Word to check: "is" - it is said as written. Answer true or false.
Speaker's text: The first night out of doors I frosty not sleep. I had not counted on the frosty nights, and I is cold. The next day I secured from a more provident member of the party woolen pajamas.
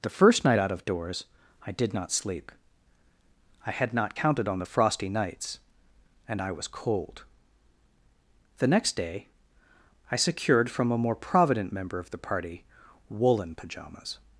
false